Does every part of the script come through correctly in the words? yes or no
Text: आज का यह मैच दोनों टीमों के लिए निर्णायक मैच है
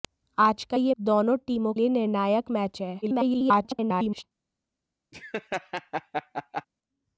no